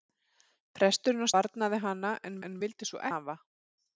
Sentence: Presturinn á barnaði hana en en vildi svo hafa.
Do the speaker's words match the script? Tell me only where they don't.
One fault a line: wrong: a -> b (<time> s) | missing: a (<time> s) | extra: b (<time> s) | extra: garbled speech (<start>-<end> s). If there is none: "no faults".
no faults